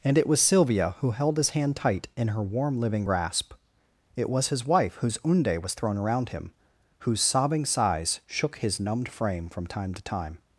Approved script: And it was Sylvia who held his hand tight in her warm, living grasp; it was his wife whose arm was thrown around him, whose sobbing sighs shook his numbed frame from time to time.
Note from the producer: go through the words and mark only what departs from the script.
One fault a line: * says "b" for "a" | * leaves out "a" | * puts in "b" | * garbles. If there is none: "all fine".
* says "unde" for "arm"